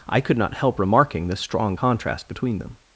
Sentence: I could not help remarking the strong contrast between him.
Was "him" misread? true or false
true